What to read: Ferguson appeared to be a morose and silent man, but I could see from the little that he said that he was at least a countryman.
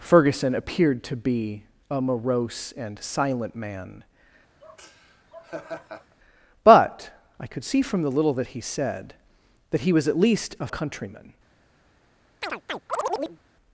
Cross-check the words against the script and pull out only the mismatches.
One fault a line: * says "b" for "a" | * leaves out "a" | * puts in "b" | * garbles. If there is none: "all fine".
all fine